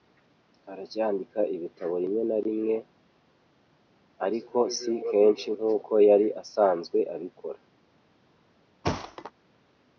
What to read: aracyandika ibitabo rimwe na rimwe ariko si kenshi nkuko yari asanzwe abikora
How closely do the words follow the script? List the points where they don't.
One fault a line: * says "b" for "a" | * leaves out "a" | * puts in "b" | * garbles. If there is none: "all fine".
all fine